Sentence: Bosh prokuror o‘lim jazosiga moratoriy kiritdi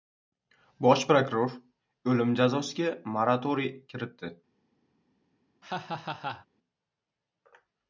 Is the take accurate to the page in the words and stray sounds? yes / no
no